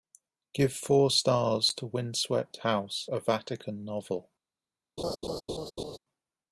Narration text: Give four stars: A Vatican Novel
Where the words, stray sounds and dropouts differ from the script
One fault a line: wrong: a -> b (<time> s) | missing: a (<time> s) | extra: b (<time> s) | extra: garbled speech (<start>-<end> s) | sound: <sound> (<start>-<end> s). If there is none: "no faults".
extra: to Windswept House (1.8 s)
sound: laugh (5.0-6.0 s)